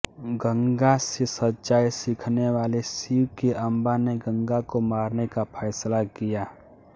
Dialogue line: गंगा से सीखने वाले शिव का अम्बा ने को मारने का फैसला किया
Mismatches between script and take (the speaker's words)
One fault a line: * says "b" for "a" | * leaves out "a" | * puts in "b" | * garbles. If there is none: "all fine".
* puts in "सच्चाई"
* says "के" for "का"
* puts in "गंगा"